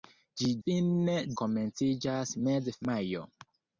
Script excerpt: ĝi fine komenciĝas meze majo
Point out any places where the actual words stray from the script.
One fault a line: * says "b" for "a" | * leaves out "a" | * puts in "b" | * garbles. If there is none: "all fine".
all fine